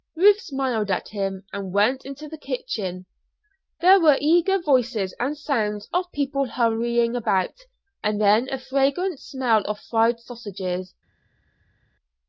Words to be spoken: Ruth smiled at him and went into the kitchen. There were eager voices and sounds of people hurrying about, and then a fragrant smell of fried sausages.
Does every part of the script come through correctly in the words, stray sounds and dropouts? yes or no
yes